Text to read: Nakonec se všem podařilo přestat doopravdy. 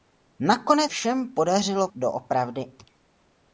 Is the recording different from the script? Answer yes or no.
yes